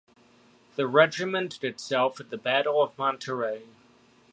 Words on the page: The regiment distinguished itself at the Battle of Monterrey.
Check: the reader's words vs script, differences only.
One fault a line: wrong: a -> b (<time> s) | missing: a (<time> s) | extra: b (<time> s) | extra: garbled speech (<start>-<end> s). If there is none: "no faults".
missing: distinguished (1.6 s)